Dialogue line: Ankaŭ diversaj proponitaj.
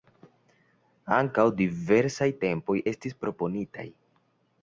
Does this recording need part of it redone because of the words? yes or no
yes